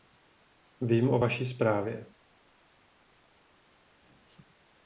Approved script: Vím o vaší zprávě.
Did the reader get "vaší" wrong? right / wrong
right